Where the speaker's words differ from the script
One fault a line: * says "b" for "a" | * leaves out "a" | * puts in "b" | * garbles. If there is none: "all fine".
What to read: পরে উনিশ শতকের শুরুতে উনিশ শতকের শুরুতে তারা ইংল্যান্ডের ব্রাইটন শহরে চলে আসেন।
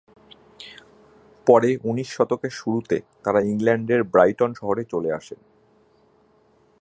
* leaves out "উনিশ শতকের শুরুতে"